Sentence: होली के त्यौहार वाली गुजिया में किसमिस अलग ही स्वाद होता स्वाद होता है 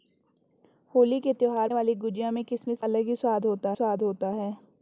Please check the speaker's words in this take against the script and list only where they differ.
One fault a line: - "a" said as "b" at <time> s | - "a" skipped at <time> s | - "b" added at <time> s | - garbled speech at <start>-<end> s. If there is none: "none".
none